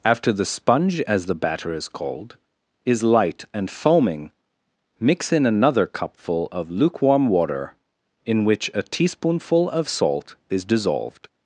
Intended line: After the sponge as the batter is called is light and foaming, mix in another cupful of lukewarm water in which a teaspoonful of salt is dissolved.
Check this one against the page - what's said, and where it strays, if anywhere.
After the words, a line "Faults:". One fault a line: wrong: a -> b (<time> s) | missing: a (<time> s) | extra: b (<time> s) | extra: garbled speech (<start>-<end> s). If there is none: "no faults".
After the sponge as the batter is called is light and foaming, mix in another cupful of lukewarm water in which a teaspoonful of salt is dissolved.
Faults:
no faults